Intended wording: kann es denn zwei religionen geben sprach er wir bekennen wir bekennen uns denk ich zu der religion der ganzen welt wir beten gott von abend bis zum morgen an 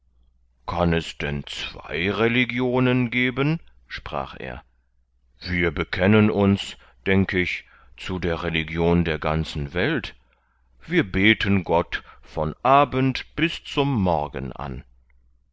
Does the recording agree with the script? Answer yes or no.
no